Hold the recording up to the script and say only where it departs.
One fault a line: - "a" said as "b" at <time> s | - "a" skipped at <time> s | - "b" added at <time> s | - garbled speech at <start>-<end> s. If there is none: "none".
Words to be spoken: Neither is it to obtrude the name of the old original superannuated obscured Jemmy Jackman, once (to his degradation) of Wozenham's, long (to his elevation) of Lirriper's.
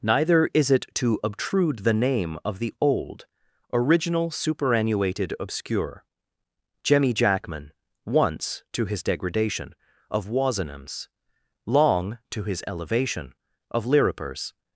- "obscured" said as "obscure" at 5.4 s